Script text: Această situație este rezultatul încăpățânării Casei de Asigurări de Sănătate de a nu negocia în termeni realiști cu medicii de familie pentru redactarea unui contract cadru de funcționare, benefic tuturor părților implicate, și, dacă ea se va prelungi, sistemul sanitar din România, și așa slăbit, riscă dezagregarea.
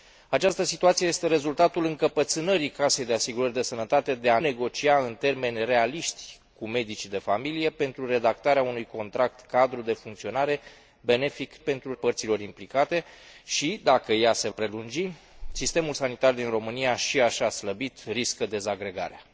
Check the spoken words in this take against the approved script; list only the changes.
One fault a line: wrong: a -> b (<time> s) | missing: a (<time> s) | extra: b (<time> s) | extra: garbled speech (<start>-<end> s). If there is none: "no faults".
missing: nu (4.4 s)
wrong: tuturor -> pentru (11.6 s)
missing: va (14.5 s)